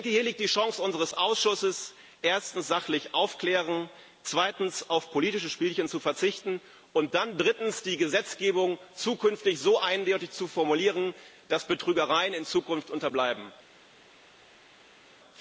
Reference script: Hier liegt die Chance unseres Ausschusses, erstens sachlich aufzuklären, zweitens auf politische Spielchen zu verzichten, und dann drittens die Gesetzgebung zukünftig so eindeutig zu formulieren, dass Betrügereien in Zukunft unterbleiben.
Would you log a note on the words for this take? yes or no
no